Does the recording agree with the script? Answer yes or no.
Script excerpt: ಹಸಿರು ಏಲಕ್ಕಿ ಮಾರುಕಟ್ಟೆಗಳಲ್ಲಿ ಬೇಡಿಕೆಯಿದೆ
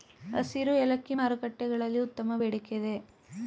no